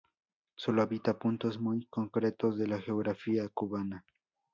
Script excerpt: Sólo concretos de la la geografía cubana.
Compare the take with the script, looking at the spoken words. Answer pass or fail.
fail